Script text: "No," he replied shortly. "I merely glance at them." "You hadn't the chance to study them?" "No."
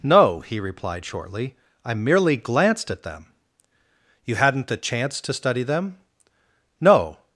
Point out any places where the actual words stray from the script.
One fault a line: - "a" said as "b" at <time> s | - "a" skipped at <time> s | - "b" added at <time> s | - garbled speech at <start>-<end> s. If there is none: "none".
- "glance" said as "glanced" at 2.4 s